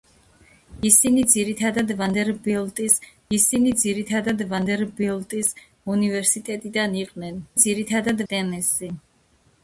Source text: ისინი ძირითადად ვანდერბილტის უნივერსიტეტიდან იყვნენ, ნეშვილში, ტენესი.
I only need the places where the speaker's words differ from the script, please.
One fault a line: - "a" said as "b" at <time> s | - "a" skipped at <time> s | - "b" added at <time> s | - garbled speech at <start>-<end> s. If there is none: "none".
- "ისინი ძირითადად ვანდერბილტის" added at 3.4 s
- "ნეშვილში" said as "ძირითადად" at 7.6 s